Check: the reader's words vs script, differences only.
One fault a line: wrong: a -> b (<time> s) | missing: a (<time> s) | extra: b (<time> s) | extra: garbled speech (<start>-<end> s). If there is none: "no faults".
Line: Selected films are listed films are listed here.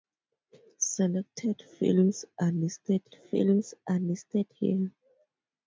no faults